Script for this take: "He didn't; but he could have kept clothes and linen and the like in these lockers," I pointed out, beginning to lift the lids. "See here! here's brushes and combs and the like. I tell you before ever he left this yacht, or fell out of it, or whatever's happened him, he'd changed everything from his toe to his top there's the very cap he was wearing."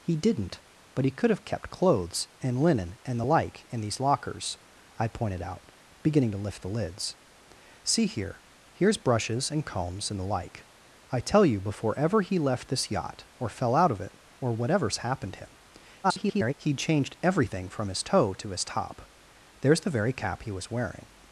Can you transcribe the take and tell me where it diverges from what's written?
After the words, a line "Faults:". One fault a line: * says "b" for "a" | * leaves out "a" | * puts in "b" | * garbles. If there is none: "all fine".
"He didn't; but he could have kept clothes and linen and the like in these lockers," I pointed out, beginning to lift the lids. "See here! here's brushes and combs and the like. I tell you before ever he left this yacht, or fell out of it, or whatever's happened him, [garbled] he'd changed everything from his toe to his top there's the very cap he was wearing."
Faults:
* garbles